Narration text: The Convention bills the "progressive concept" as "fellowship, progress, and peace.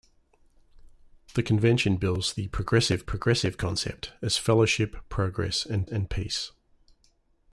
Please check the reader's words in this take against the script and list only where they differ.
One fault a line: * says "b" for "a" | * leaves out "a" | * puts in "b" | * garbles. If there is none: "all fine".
* puts in "progressive"
* puts in "and"